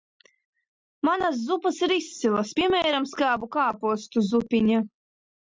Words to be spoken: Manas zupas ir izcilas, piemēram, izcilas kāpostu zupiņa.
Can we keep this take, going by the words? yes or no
no